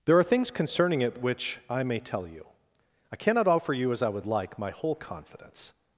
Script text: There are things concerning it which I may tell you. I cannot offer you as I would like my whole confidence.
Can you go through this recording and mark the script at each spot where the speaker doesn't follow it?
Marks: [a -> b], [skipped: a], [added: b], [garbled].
There are things concerning it which I may tell you. I cannot offer you as I would like my whole confidence.